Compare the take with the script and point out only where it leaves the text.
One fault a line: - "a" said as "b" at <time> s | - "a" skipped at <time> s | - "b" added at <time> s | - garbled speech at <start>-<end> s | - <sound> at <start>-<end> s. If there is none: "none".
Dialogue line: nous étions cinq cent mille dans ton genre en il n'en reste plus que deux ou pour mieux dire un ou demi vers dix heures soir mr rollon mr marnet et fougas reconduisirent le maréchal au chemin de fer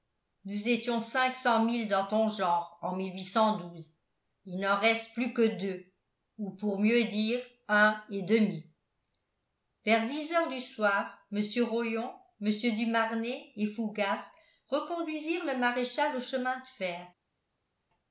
- "ou" said as "et" at 8.1 s
- "du" added at 10.5 s
- "du" added at 12.7 s